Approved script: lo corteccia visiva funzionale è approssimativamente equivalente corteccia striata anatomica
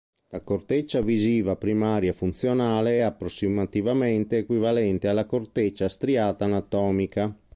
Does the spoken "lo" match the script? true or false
false